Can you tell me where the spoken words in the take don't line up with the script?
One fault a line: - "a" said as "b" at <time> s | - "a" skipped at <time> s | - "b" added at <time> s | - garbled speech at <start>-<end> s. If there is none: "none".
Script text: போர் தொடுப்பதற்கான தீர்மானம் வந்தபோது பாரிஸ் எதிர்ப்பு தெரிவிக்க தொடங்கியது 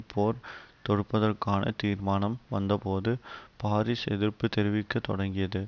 none